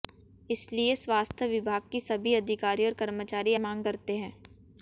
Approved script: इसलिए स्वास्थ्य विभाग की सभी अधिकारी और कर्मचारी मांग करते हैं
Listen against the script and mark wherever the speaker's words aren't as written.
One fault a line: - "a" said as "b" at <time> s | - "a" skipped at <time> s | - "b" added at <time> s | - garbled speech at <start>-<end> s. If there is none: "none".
none